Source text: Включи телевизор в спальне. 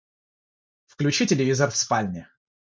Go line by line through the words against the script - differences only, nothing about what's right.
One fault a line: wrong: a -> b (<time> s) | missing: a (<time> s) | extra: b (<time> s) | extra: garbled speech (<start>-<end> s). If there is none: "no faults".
no faults